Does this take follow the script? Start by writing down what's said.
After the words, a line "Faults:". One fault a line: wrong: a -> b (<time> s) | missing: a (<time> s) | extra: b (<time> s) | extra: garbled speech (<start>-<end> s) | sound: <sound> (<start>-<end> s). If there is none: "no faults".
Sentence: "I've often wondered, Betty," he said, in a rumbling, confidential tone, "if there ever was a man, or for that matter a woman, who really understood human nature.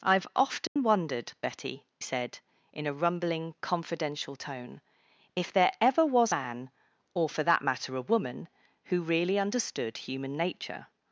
"I've often wondered, Betty," said, in a rumbling, confidential tone, "if there ever was man, or for that matter a woman, who really understood human nature.
Faults:
sound: dropout (0.7-0.8 s)
missing: he (1.9 s)
missing: a (6.3 s)